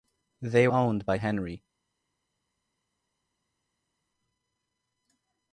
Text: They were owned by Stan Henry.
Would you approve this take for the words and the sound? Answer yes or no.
no